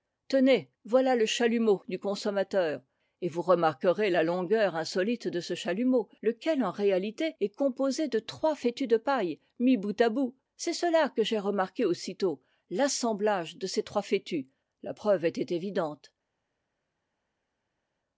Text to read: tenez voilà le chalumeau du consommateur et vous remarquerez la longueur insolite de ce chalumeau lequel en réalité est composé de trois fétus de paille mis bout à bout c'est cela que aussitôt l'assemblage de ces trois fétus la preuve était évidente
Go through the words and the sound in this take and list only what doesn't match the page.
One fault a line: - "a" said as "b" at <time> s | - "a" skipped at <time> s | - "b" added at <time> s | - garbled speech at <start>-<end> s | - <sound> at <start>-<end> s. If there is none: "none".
- "j'ai remarqué" added at 11.2 s